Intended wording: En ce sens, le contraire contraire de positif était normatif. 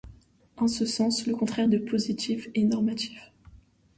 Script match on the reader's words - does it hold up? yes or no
no